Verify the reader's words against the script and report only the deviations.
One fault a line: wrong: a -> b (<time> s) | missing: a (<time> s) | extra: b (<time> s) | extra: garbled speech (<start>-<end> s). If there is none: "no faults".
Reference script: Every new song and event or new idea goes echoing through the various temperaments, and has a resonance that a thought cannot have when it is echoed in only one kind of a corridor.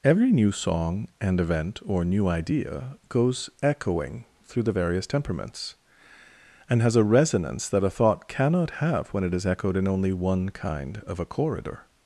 no faults